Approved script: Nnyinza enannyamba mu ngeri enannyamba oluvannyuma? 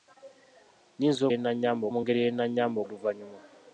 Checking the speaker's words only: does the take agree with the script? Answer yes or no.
yes